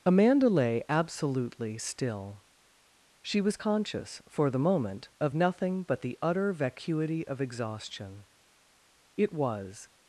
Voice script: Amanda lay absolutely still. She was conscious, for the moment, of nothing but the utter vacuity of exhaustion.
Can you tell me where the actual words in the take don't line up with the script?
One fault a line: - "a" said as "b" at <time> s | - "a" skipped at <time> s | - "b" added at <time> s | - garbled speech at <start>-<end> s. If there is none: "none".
- "It was" added at 9.2 s